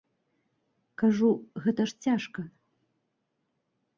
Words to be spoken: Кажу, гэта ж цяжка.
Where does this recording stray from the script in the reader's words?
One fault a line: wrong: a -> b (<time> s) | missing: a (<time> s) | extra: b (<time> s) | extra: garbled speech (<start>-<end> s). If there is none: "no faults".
no faults